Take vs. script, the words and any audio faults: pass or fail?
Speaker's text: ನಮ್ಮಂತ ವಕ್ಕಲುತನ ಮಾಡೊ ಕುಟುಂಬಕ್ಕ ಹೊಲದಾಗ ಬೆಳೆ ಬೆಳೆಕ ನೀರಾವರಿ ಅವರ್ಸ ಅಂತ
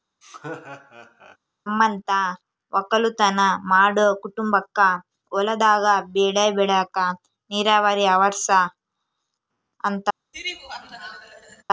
fail